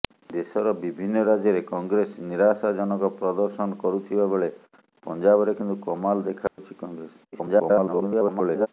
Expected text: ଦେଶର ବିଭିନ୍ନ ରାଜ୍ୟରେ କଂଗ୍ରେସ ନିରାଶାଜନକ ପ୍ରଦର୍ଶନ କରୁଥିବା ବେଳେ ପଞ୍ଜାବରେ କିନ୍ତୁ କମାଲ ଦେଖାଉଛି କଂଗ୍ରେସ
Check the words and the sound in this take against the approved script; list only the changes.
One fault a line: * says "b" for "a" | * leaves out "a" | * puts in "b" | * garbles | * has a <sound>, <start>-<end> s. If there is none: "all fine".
* has a dropout, 6.5-6.6 s
* garbles